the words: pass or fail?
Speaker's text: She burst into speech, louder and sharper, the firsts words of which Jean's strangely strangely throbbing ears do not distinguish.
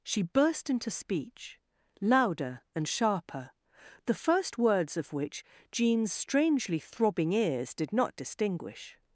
fail